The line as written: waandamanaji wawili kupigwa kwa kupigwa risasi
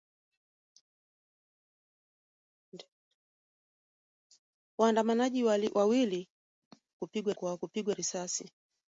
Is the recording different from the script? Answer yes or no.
no